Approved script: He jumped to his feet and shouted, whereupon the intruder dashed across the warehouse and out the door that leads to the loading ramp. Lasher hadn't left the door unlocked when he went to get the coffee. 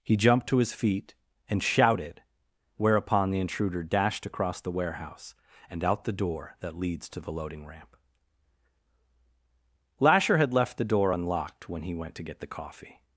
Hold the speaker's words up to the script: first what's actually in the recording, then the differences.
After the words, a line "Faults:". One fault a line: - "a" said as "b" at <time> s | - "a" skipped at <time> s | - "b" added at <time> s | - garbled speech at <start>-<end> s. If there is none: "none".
He jumped to his feet and shouted, whereupon the intruder dashed across the warehouse and out the door that leads to the loading ramp. Lasher had left the door unlocked when he went to get the coffee.
Faults:
- "hadn't" said as "had" at 10.4 s